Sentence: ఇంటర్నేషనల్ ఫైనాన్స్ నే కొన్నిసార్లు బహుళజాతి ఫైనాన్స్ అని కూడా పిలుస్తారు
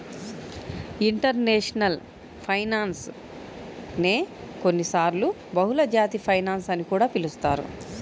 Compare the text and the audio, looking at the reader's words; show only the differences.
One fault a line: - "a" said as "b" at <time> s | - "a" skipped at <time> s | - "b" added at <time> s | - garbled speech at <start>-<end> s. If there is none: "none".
none